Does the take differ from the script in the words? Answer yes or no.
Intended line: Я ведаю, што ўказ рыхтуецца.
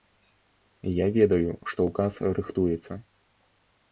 no